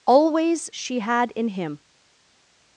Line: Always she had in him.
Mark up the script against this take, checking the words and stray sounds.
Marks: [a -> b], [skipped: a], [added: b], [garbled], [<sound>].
Always she had in him.